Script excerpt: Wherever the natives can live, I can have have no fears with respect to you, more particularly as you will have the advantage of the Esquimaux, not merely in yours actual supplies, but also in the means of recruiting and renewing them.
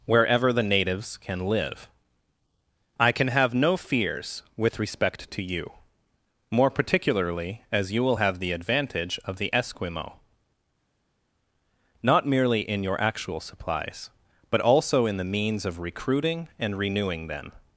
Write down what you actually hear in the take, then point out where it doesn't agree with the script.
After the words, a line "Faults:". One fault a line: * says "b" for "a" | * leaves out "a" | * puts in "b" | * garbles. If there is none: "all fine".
Wherever the natives can live, I can have no fears with respect to you, more particularly as you will have the advantage of the Esquimaux, not merely in your actual supplies, but also in the means of recruiting and renewing them.
Faults:
* leaves out "have"
* says "your" for "yours"